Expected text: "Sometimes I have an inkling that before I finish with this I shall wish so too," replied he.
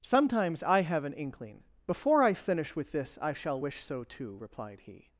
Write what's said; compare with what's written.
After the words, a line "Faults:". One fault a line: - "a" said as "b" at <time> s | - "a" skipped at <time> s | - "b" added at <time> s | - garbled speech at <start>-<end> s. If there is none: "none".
"Sometimes I have an inkling before I finish with this I shall wish so too," replied he.
Faults:
- "that" skipped at 1.6 s